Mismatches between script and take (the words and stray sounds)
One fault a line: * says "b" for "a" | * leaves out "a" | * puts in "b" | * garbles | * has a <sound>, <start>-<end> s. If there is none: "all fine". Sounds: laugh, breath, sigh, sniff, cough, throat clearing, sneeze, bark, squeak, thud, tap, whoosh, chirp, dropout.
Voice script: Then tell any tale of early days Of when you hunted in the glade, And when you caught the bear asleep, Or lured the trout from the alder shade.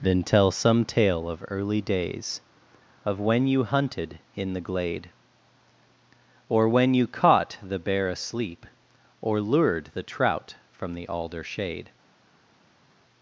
* says "some" for "any"
* says "Or" for "And"